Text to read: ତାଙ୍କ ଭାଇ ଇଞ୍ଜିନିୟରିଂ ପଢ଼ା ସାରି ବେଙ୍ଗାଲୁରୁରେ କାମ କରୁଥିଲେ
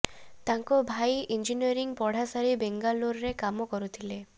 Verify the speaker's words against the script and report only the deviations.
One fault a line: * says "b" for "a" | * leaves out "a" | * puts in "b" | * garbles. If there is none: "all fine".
all fine